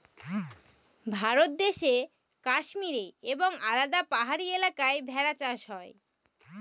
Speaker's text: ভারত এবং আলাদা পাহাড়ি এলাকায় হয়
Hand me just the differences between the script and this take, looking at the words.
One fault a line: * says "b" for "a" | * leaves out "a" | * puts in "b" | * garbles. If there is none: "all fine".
* puts in "দেশে কাশ্মীরে"
* puts in "ভেড়া চাষ"